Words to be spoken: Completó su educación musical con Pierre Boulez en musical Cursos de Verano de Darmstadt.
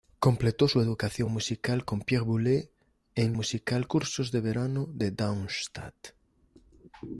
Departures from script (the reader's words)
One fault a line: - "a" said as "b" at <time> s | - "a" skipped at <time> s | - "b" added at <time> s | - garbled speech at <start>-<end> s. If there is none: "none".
none